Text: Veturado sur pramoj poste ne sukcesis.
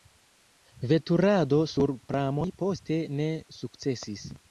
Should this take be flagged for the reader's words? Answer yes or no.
no